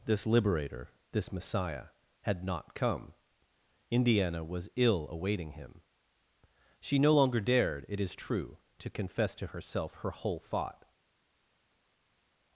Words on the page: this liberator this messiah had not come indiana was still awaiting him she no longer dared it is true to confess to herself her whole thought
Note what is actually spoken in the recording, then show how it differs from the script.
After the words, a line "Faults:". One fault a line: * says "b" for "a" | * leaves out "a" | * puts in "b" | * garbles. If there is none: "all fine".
this liberator this messiah had not come indiana was ill awaiting him she no longer dared it is true to confess to herself her whole thought
Faults:
* says "ill" for "still"